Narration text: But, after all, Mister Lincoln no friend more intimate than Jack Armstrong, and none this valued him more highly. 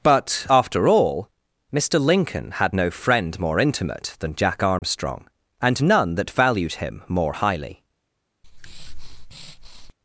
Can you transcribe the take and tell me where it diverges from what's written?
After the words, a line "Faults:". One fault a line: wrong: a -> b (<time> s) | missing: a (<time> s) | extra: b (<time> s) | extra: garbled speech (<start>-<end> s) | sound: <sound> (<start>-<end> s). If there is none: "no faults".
But, after all, Mister Lincoln had no friend more intimate than Jack Armstrong, and none that valued him more highly.
Faults:
extra: had (2.5 s)
sound: dropout (4.8-4.8 s)
wrong: this -> that (6.2 s)
sound: breath (8.4-9.9 s)